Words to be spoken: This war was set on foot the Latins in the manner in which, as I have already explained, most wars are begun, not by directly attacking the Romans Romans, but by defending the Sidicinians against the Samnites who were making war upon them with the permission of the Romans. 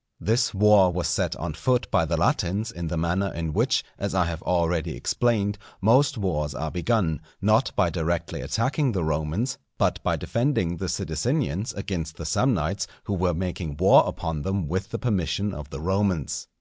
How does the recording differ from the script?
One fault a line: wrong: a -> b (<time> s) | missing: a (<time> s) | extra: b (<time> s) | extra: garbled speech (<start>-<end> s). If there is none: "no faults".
extra: by (1.9 s)
missing: Romans (9.6 s)